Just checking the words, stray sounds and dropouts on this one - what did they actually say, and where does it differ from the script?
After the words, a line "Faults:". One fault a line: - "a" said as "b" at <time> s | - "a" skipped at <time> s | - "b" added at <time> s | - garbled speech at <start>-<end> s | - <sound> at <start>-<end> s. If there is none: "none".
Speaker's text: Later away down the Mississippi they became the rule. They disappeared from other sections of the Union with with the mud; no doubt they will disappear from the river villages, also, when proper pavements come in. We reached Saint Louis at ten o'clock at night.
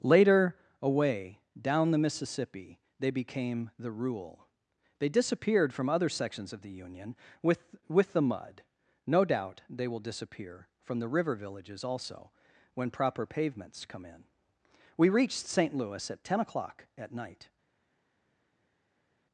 Later away down the Mississippi they became the rule. They disappeared from other sections of the Union with with the mud; no doubt they will disappear from the river villages, also, when proper pavements come in. We reached Saint Louis at ten o'clock at night.
Faults:
none